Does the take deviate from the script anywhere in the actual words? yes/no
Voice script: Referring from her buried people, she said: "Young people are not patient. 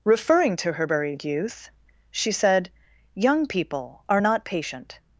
yes